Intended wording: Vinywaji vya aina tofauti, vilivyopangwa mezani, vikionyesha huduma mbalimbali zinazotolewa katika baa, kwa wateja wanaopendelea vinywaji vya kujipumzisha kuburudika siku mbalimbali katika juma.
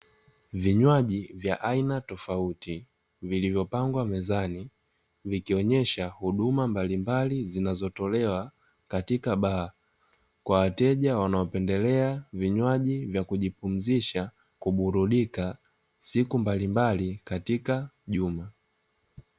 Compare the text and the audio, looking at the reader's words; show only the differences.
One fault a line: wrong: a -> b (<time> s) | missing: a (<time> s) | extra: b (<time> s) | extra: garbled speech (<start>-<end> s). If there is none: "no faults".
no faults